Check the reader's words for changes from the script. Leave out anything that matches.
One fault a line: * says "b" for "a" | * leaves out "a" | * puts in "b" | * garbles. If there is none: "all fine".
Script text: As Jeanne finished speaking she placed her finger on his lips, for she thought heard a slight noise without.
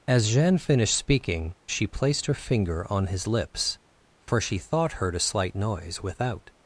all fine